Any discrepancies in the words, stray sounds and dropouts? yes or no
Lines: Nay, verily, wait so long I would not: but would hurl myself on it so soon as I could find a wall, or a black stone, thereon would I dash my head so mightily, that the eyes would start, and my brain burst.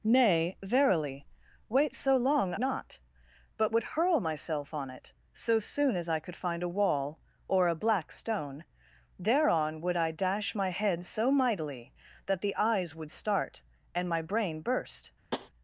yes